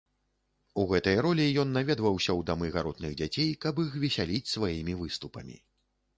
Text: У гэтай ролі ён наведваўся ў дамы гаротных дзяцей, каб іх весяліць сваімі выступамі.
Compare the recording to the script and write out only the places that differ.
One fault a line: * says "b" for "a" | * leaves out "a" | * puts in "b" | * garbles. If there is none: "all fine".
all fine